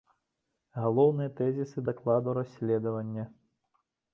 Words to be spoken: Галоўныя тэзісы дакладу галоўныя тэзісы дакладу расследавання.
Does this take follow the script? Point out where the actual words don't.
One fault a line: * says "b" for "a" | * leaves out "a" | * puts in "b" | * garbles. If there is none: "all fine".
* leaves out "галоўныя тэзісы дакладу"